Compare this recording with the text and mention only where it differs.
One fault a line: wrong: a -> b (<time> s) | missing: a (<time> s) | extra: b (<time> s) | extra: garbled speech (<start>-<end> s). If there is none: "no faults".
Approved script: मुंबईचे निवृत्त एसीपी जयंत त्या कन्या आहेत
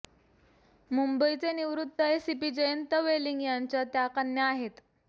extra: वेलिंग यांच्या (3.0 s)